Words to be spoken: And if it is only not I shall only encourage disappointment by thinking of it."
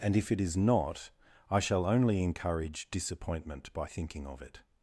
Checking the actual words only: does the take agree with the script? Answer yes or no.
no